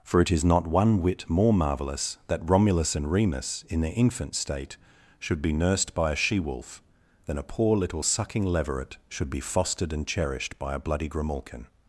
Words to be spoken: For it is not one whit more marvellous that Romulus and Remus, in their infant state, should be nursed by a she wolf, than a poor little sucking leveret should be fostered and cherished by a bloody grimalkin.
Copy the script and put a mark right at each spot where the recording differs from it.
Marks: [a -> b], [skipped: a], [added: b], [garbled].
For it is not one whit more marvellous that Romulus and Remus, in their infant state, should be nursed by a she wolf, than a poor little sucking leveret should be fostered and cherished by a bloody grimalkin.